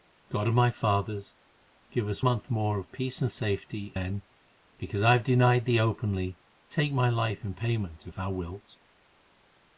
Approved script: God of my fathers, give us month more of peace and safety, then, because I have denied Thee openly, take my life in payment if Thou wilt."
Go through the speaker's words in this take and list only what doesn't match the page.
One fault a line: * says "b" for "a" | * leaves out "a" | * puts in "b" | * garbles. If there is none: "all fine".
all fine